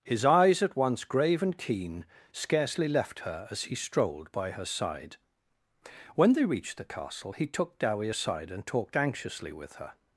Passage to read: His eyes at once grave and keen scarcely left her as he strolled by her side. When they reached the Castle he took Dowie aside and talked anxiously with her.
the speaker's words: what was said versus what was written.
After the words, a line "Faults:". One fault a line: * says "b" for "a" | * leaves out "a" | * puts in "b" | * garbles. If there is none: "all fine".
His eyes at once grave and keen scarcely left her as he strolled by her side. When they reached the Castle he took Dowie aside and talked anxiously with her.
Faults:
all fine